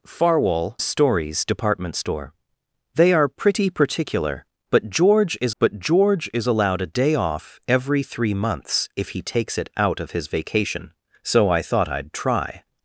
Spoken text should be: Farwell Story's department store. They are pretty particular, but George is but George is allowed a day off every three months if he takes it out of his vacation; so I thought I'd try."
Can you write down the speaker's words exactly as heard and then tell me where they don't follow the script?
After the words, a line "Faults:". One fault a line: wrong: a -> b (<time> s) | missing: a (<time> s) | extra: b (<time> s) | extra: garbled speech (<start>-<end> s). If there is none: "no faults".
Farwell Story's department store. They are pretty particular, but George is but George is allowed a day off every three months if he takes it out of his vacation; so I thought I'd try."
Faults:
no faults